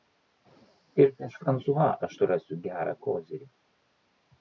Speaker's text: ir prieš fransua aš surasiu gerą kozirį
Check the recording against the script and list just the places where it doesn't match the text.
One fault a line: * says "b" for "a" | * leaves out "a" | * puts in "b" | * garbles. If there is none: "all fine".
all fine